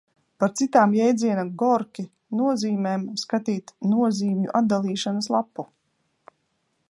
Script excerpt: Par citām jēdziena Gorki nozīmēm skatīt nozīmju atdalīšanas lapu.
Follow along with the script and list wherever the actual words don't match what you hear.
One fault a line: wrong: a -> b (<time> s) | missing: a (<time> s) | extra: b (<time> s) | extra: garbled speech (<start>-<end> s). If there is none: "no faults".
no faults